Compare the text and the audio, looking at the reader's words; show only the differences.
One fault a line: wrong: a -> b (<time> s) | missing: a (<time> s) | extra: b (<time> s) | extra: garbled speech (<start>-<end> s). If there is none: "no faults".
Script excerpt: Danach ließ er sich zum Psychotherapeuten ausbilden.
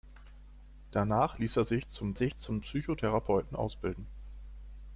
extra: sich zum (2.1 s)